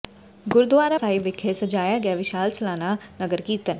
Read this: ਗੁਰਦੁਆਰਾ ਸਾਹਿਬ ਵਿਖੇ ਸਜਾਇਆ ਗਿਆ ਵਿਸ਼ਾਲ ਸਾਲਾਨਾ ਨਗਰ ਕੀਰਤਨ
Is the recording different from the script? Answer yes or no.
no